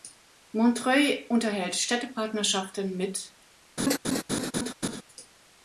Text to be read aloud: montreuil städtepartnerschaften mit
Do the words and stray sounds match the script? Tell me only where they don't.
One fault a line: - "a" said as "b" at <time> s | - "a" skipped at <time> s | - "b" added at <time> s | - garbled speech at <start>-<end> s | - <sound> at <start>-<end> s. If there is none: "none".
- "unterhält" added at 1.3 s
- laugh at 3.8-5.0 s